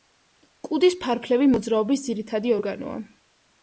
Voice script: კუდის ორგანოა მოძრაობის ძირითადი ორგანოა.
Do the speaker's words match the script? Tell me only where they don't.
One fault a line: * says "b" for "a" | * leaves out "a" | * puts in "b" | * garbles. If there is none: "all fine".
* says "ფარფლები" for "ორგანოა"